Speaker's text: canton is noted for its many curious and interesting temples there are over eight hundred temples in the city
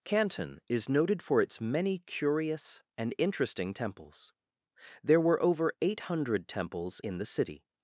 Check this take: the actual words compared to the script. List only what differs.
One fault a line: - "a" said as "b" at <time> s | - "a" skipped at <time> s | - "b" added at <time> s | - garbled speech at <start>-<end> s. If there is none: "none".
- "are" said as "were" at 5.2 s